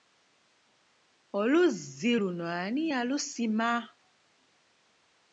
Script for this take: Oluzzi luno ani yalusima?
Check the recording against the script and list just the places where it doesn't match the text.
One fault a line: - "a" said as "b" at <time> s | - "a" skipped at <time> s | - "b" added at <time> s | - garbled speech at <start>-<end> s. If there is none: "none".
none